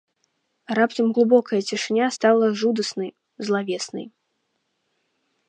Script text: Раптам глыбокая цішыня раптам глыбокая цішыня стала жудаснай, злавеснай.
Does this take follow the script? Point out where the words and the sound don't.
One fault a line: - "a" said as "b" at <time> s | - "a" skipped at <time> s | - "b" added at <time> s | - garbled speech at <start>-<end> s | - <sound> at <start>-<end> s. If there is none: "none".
- "раптам глыбокая цішыня" skipped at 2.1 s